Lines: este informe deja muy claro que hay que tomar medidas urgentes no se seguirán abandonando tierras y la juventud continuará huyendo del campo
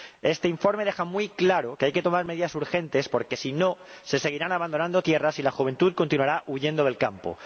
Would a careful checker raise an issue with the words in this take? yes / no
yes